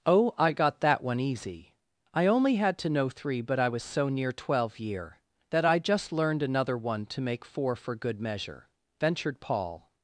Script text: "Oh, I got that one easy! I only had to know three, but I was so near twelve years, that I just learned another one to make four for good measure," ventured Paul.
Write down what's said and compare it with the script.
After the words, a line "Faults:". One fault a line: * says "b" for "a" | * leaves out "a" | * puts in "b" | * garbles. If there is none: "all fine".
"Oh, I got that one easy! I only had to know three, but I was so near twelve year, that I just learned another one to make four for good measure," ventured Paul.
Faults:
* says "year" for "years"